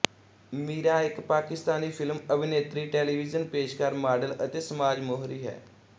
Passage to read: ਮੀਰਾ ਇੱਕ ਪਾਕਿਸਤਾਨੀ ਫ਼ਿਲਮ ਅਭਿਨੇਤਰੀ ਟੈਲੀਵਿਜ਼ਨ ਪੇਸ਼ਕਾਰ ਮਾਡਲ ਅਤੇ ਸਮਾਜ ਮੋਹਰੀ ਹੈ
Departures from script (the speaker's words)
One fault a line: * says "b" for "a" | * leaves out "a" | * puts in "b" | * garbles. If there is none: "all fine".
all fine